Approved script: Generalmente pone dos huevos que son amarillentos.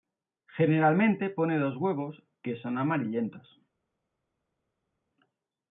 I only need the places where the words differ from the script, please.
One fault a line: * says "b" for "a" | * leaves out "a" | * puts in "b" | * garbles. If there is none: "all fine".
all fine